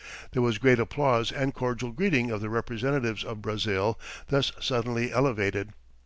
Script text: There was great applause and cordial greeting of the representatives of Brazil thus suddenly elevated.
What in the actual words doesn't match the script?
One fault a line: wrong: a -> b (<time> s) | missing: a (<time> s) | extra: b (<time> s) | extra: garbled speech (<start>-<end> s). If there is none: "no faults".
no faults